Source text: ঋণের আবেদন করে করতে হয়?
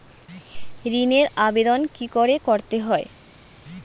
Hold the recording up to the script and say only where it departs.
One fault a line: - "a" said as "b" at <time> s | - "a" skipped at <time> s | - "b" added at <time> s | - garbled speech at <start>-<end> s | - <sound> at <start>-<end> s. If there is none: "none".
- "কি" added at 1.9 s